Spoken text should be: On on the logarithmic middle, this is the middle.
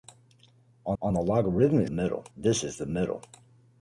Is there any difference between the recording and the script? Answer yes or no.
no